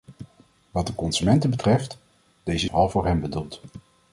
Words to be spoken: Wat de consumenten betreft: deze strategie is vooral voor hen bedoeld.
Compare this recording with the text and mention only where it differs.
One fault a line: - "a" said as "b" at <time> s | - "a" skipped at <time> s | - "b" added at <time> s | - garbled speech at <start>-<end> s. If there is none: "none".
- "strategie is" skipped at 2.7 s